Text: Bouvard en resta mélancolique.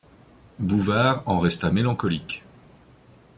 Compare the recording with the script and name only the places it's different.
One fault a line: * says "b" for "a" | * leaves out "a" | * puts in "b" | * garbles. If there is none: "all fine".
all fine